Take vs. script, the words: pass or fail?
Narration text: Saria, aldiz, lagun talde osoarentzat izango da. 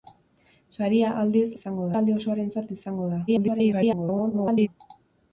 fail